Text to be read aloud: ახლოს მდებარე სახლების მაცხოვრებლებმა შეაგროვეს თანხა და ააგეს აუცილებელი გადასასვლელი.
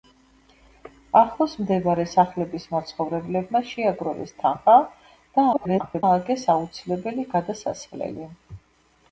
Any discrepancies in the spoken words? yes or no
yes